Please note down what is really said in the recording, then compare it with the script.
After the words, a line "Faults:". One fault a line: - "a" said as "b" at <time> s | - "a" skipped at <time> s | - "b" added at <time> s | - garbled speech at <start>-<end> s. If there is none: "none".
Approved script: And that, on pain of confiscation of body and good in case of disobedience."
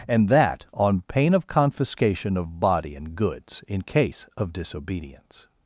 And that, on pain of confiscation of body and goods in case of disobedience."
Faults:
- "good" said as "goods" at 3.1 s